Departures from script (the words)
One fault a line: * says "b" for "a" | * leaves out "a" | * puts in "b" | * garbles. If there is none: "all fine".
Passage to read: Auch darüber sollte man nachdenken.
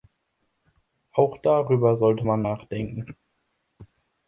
all fine